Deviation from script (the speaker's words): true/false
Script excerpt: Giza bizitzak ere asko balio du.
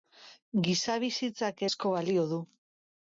true